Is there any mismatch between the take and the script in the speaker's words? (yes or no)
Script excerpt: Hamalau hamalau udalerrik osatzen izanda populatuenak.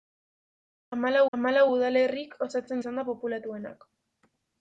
no